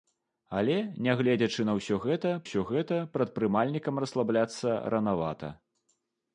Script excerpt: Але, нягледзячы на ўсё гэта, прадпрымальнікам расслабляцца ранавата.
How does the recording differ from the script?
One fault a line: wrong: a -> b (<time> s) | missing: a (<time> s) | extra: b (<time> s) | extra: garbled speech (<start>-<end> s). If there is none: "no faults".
extra: ўсё гэта (2.5 s)